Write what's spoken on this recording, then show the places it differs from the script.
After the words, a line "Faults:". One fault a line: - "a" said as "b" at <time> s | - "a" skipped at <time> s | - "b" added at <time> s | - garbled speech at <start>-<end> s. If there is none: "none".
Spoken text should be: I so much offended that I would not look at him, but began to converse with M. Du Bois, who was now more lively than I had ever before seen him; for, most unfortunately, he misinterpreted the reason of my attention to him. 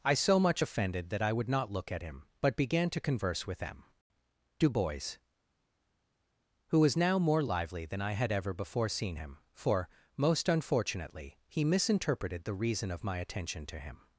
I so much offended that I would not look at him, but began to converse with M. Du Bois, who was now more lively than I had ever before seen him; for, most unfortunately, he misinterpreted the reason of my attention to him.
Faults:
none